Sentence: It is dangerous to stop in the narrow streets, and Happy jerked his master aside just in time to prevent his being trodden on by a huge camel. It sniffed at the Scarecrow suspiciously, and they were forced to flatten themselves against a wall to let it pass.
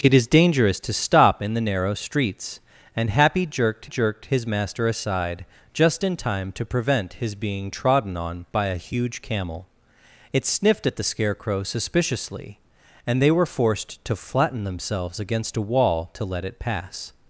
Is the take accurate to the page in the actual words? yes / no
no